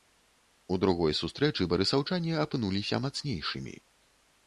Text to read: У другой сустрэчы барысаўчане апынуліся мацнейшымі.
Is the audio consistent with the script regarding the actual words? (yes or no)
yes